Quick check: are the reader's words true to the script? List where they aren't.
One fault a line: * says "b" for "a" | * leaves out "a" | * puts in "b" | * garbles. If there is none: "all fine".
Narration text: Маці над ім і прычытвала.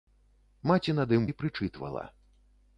all fine